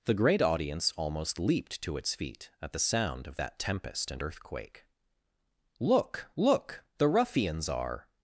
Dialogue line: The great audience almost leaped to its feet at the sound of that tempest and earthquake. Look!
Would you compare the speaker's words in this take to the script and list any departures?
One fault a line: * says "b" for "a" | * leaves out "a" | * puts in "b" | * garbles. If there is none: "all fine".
* puts in "Look the ruffians are"